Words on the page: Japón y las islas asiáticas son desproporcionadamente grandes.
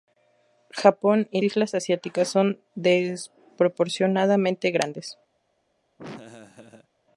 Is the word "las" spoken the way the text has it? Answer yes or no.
no